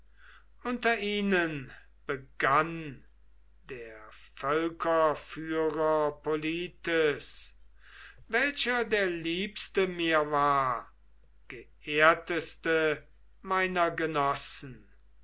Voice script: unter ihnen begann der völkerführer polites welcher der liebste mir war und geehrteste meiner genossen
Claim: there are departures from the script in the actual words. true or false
true